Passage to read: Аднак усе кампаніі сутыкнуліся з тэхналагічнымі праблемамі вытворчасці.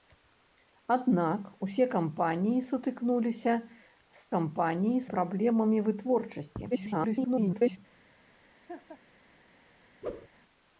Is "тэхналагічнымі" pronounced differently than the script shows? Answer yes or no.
yes